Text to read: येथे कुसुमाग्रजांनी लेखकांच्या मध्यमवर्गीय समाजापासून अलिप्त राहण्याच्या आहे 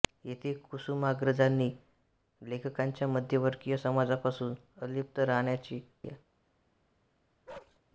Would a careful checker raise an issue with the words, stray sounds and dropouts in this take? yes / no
yes